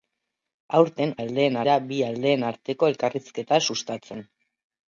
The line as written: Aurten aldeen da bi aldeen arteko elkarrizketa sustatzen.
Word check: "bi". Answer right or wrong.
right